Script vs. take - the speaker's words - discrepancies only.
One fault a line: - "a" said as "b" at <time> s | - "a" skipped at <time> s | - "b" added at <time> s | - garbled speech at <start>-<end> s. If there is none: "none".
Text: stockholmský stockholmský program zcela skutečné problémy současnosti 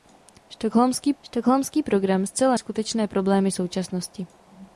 none